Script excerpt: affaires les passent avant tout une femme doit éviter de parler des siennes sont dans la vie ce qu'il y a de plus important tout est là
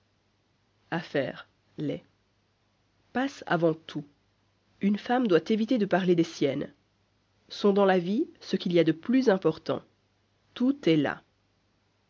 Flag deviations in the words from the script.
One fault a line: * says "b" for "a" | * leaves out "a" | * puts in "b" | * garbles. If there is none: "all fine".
all fine